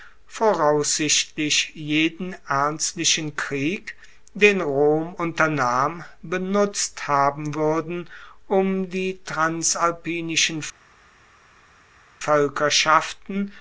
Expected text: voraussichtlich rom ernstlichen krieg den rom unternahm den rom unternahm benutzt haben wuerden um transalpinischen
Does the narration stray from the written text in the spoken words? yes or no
yes